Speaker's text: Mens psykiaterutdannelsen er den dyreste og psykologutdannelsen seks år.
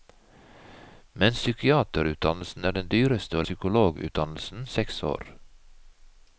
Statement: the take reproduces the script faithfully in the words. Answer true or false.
true